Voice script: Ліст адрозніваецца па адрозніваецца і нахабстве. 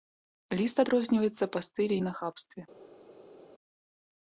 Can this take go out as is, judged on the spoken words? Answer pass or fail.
fail